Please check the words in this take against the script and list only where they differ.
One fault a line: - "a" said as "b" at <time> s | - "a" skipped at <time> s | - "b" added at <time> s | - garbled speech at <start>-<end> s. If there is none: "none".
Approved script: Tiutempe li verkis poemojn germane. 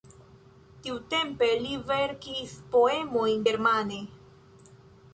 none